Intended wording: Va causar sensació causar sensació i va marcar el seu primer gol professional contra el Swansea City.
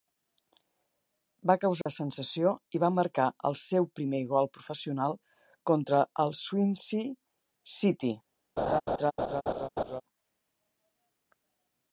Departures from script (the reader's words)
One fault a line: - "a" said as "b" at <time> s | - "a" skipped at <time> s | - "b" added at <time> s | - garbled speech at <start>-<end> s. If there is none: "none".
- "causar sensació" skipped at 2.5 s